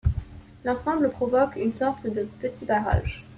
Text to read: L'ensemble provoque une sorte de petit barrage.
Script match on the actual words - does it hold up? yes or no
yes